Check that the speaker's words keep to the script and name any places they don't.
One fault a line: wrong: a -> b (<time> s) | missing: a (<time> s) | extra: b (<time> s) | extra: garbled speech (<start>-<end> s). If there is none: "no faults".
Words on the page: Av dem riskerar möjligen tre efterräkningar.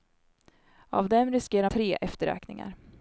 missing: möjligen (1.7 s)